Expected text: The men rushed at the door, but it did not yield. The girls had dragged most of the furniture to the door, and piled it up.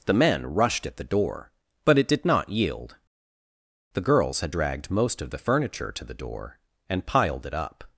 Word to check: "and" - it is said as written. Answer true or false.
true